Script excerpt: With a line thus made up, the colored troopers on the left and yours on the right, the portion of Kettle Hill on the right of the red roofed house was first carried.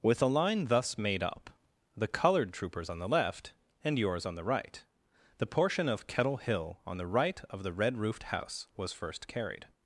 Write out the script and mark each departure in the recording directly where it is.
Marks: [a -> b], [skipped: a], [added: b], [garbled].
With a line thus made up, the colored troopers on the left and yours on the right, the portion of Kettle Hill on the right of the red roofed house was first carried.